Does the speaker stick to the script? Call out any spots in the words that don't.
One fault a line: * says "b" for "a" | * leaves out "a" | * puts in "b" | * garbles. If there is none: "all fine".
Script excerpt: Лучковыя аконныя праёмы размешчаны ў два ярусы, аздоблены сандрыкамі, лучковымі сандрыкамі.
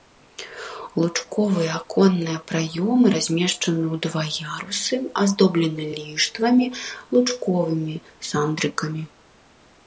* says "ліштвамі" for "сандрыкамі"